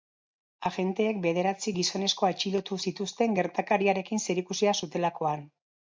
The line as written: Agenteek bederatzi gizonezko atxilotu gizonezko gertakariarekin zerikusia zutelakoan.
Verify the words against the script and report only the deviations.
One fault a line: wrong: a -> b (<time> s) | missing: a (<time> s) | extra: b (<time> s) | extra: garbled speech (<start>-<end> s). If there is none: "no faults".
wrong: gizonezko -> zituzten (2.8 s)